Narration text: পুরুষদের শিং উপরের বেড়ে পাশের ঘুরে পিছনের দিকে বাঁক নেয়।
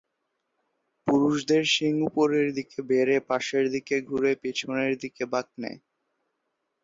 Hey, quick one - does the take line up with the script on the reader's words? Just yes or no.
no